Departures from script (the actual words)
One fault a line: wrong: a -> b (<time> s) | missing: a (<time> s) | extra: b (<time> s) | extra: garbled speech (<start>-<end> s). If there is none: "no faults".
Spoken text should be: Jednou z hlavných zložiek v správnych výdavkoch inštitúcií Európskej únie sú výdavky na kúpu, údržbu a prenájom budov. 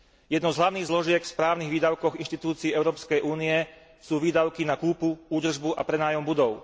no faults